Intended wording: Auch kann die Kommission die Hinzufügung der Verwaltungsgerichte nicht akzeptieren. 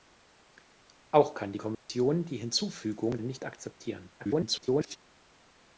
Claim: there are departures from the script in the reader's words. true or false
true